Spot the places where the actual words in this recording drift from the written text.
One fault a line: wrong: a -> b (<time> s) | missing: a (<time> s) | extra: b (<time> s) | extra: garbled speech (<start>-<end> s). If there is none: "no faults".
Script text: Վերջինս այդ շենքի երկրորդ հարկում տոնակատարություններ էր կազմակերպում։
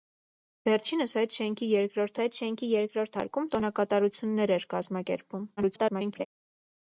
extra: այդ շենքի երկրորդ (2.2 s)
extra: garbled speech (5.6-6.3 s)